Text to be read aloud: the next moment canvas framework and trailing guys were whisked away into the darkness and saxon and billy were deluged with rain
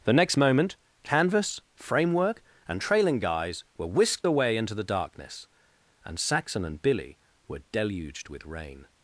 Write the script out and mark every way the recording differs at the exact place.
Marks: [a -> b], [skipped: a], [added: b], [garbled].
the next moment canvas framework and trailing guys were whisked away into the darkness and saxon and billy were deluged with rain